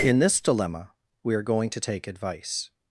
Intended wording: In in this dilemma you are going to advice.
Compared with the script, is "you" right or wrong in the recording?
wrong